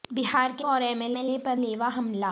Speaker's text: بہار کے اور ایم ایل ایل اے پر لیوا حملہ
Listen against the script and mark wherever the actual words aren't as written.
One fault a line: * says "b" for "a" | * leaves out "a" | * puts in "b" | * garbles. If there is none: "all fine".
all fine